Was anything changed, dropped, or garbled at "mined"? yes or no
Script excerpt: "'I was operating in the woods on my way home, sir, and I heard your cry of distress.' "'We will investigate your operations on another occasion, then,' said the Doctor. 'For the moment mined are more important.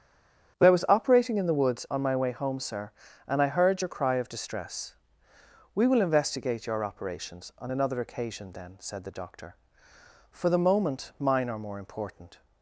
yes